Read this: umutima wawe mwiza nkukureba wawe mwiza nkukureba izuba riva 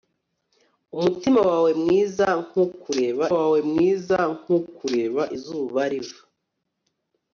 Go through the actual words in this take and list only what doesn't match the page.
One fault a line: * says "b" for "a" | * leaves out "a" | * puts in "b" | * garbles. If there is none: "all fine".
all fine